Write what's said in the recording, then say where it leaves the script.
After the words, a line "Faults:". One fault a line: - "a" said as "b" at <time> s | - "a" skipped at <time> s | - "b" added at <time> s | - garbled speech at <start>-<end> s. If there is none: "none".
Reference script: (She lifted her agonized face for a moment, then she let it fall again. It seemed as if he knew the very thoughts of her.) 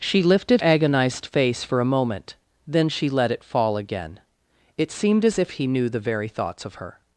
(She lifted agonized face for a moment, then she let it fall again. It seemed as if he knew the very thoughts of her.)
Faults:
- "her" skipped at 0.6 s